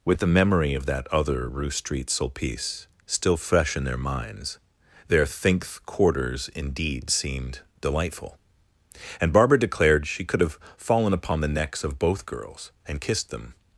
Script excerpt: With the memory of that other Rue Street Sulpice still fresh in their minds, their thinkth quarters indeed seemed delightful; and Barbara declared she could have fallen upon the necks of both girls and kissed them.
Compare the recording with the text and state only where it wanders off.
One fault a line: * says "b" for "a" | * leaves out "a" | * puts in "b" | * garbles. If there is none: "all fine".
all fine